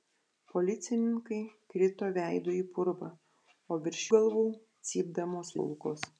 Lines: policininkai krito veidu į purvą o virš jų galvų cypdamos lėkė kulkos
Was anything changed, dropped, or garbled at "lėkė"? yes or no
yes